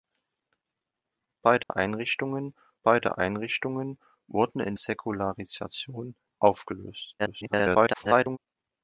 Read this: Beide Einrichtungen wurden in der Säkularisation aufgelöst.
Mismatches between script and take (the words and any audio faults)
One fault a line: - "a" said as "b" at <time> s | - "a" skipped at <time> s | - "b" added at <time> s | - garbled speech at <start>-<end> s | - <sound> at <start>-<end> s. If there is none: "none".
- dropout at 1.6-1.7 s
- "beide Einrichtungen" added at 2.8 s
- "der" skipped at 4.7 s
- garbled speech at 7.2-8.4 s